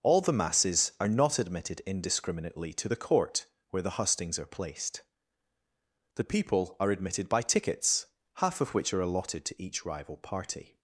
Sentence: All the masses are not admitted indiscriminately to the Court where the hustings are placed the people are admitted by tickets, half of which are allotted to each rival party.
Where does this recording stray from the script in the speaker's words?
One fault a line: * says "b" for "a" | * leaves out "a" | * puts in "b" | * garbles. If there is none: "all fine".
all fine